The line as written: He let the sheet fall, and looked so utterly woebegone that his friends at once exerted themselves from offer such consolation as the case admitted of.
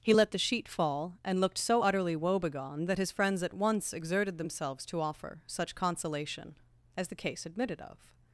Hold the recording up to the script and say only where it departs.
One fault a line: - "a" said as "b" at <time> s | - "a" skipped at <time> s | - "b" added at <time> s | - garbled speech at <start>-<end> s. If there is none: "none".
- "from" said as "to" at 4.9 s